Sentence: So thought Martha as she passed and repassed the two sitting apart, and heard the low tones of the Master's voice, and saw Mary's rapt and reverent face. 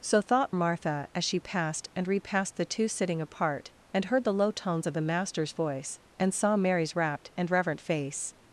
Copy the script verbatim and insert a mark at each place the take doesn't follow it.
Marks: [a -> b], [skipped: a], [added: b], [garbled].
So thought Martha as she passed and repassed the two sitting apart, and heard the low tones of the Master's voice, and saw Mary's rapt and reverent face.